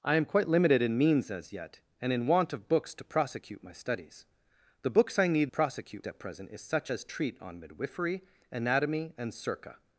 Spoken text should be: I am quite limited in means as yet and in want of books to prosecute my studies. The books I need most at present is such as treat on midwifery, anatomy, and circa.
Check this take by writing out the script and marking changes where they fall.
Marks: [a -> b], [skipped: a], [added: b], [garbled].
I am quite limited in means as yet and in want of books to prosecute my studies. The books I need [most -> prosecute] at present is such as treat on midwifery, anatomy, and circa.